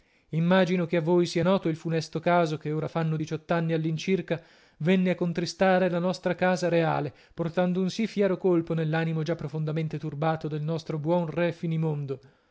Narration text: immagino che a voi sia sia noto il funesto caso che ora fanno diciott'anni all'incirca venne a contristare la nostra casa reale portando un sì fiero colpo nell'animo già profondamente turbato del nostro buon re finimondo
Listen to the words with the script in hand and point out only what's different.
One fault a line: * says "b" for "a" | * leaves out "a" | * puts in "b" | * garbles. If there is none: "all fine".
* leaves out "sia"